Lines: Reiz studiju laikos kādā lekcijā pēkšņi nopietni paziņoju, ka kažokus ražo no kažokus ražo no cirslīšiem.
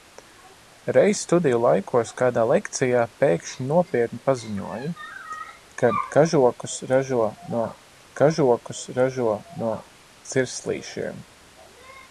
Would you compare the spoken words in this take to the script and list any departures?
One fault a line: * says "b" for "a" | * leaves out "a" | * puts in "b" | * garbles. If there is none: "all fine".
all fine